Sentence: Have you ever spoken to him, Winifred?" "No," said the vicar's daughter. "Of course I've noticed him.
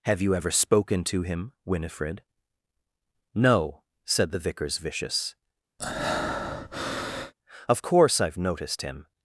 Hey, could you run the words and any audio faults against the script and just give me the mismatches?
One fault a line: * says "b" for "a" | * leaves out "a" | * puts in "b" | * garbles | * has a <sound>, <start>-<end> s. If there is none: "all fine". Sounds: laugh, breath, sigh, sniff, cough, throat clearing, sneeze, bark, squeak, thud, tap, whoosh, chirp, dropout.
* says "vicious" for "daughter"
* has a breath, 5.8-7.3 s